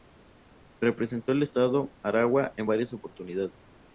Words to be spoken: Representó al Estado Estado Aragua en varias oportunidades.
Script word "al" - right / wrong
right